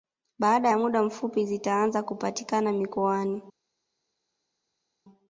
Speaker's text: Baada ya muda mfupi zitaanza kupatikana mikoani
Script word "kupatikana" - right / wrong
right